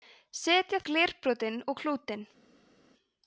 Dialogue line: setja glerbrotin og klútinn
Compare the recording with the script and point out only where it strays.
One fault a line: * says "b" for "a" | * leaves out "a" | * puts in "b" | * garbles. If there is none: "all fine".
all fine